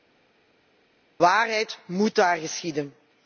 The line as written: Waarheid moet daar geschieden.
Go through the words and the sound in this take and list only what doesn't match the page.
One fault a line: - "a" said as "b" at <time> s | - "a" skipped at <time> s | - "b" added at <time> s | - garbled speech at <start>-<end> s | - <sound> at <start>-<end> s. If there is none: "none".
none